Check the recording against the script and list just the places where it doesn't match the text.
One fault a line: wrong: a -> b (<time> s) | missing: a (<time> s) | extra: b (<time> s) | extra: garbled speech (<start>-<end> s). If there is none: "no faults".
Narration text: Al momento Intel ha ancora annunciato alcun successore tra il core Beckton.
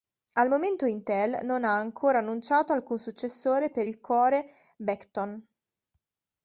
extra: non (1.4 s)
wrong: tra -> per (3.7 s)